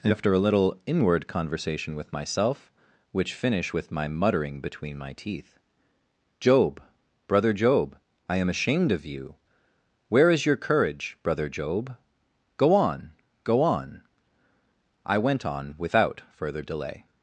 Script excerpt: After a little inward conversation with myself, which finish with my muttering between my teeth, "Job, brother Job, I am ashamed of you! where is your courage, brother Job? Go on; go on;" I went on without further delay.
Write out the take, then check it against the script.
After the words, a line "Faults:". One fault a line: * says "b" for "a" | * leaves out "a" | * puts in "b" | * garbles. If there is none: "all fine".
After a little inward conversation with myself, which finish with my muttering between my teeth, "Job, brother Job, I am ashamed of you! where is your courage, brother Job? Go on; go on;" I went on without further delay.
Faults:
all fine